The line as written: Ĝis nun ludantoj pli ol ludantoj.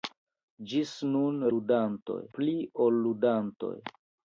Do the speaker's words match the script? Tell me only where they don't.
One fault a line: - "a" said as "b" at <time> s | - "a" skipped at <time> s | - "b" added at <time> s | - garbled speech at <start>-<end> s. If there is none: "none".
none